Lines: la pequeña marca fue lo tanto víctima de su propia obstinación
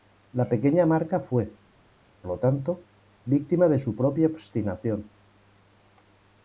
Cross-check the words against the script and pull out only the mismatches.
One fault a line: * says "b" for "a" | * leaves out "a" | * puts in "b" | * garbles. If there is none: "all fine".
all fine